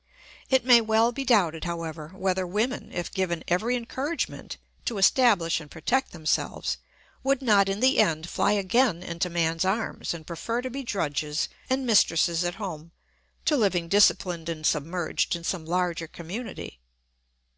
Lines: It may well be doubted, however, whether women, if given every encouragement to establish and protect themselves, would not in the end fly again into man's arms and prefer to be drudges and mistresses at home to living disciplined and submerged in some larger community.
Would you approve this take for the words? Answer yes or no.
yes